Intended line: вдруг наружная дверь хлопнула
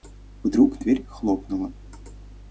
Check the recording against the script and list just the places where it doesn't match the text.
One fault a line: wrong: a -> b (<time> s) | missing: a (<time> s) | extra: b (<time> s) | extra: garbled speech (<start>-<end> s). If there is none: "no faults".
missing: наружная (0.8 s)